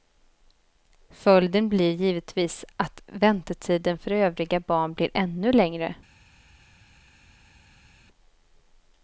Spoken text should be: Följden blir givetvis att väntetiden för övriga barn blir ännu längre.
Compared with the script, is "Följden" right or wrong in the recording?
right